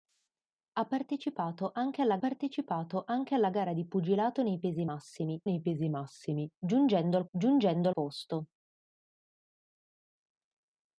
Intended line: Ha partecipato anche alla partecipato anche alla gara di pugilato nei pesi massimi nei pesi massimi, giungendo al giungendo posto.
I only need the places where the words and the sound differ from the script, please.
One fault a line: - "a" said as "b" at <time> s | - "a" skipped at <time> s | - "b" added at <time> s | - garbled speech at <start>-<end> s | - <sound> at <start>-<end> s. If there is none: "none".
none